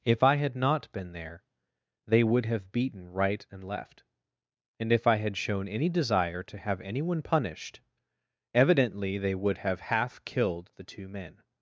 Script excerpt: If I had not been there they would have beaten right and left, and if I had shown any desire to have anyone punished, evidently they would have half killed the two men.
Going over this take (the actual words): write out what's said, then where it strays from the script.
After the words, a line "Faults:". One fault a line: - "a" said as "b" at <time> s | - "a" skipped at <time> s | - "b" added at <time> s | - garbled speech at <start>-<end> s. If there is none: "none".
If I had not been there they would have beaten right and left, and if I had shown any desire to have anyone punished, evidently they would have half killed the two men.
Faults:
none